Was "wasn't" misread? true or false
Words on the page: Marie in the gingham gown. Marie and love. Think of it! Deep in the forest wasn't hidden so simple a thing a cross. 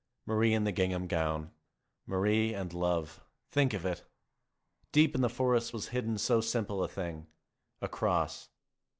true